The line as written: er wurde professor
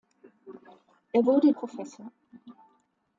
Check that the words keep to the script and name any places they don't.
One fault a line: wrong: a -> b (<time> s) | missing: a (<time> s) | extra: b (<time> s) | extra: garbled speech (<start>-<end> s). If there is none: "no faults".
no faults